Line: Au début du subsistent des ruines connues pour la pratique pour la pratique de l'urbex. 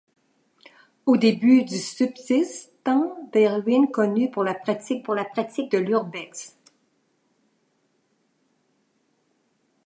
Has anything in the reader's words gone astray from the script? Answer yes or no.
no